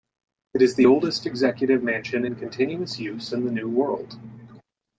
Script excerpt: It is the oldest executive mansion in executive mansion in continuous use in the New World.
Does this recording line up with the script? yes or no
no